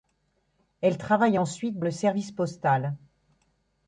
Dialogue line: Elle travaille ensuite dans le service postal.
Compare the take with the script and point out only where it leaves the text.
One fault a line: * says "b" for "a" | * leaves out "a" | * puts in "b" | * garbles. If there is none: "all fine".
* leaves out "dans"